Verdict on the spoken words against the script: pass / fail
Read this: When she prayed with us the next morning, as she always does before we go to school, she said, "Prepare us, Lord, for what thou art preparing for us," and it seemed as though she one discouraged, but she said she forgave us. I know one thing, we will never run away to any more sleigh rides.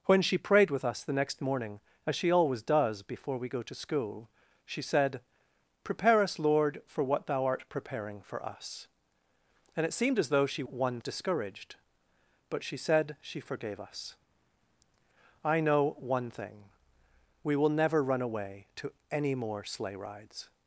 pass